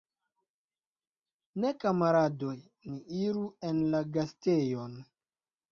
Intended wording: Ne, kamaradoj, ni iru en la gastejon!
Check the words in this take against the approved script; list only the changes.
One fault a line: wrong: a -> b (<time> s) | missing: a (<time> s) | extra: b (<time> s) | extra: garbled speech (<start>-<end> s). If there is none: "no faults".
no faults